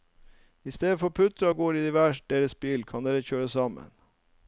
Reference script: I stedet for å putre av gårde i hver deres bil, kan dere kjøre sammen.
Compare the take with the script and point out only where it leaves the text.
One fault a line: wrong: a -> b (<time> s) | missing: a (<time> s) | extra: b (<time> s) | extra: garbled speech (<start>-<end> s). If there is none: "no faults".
no faults